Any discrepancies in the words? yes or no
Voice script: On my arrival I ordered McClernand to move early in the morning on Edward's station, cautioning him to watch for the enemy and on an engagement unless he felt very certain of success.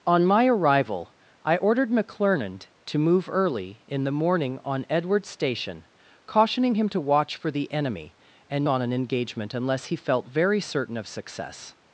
no